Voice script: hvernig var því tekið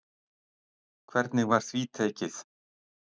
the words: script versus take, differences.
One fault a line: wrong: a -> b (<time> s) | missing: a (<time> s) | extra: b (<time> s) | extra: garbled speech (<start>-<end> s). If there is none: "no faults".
no faults